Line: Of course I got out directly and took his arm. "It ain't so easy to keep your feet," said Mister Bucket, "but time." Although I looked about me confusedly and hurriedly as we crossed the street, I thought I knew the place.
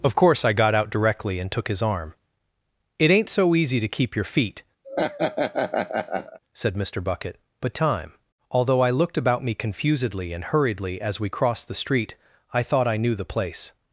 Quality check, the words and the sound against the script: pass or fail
fail